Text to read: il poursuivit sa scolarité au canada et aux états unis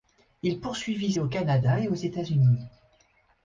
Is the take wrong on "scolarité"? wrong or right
wrong